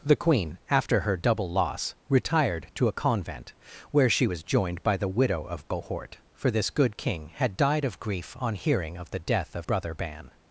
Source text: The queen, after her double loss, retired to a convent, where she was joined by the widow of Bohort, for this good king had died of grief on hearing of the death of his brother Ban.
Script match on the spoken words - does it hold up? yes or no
no